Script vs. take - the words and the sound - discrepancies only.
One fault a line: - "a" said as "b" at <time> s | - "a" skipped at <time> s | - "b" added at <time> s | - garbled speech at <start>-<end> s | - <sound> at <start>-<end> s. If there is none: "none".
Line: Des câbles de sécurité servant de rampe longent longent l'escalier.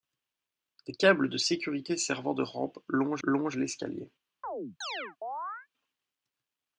- chirp at 4.4-5.7 s